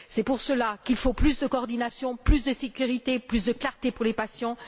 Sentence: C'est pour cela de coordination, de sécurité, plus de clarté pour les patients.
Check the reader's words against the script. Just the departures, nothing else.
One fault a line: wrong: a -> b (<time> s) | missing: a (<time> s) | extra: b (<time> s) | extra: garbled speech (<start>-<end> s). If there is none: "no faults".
extra: qu'il faut plus (0.8 s)
extra: plus (2.2 s)